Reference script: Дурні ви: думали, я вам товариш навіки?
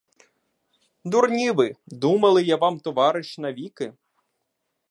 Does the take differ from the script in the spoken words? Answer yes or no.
no